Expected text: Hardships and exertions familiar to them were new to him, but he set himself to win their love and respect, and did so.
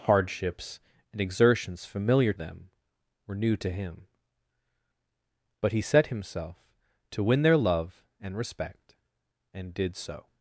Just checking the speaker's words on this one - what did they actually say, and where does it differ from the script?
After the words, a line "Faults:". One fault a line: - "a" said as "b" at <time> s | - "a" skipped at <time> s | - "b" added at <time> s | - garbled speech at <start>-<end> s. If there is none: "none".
Hardships and exertions familiar them were new to him, but he set himself to win their love and respect, and did so.
Faults:
- "to" skipped at 2.3 s